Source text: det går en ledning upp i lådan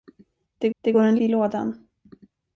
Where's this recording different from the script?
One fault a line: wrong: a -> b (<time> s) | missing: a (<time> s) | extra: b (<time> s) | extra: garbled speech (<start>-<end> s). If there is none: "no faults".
extra: det (0.8 s)
missing: ledning upp (1.2 s)